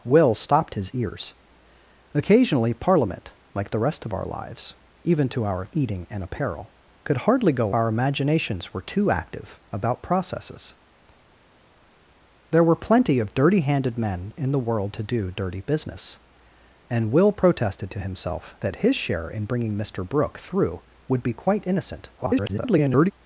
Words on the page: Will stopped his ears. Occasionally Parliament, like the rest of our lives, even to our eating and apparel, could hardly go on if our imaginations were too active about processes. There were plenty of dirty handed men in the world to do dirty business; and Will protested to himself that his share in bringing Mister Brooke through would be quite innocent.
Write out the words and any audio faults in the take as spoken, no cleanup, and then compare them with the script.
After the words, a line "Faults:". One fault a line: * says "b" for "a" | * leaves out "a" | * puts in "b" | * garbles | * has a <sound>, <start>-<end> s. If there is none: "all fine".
Will stopped his ears. Occasionally Parliament, like the rest of our lives, even to our eating and apparel, could hardly go our imaginations were too active about processes. There were plenty of dirty handed men in the world to do dirty business; and Will protested to himself that his share in bringing Mister Brooke through would be quite innocent. [garbled]
Faults:
* leaves out "on if"
* garbles